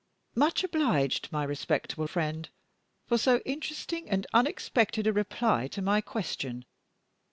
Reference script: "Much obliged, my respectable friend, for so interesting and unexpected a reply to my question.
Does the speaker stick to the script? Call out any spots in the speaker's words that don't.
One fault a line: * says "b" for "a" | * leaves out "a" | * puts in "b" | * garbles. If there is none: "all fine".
all fine